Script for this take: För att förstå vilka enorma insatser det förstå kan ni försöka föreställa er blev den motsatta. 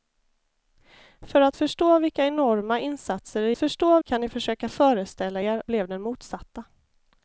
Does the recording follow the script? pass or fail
pass